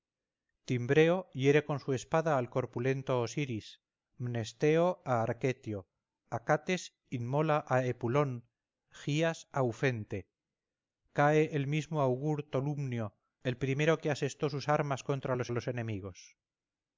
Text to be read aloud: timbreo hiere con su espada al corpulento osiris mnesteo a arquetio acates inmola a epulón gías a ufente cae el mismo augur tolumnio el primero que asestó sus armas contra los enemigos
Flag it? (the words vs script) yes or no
yes